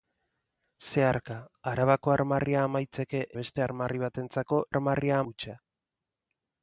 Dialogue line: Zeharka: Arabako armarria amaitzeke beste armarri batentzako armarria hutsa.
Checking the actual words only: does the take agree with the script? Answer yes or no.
yes